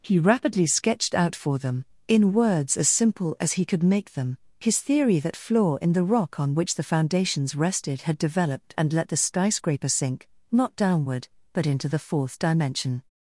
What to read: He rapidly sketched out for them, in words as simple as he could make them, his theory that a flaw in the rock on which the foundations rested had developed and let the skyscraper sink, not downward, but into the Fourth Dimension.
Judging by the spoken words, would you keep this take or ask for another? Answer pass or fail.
fail